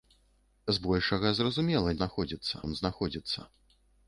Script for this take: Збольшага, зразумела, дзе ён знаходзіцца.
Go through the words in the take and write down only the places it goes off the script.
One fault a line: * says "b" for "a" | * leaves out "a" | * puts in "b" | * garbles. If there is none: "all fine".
* says "знаходзіцца" for "дзе"